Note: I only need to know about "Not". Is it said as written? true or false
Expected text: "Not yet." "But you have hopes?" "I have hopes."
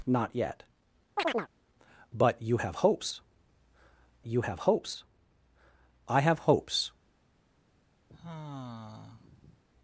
true